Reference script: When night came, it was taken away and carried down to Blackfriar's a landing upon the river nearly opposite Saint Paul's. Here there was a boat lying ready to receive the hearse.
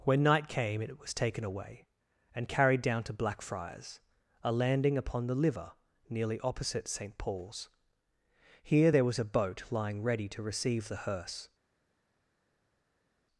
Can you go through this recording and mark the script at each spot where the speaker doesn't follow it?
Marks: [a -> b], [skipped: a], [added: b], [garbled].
When night came, it was taken away and carried down to Blackfriar's a landing upon the [river -> liver] nearly opposite Saint Paul's. Here there was a boat lying ready to receive the hearse.